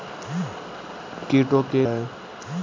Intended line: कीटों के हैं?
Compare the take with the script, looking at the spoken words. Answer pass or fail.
pass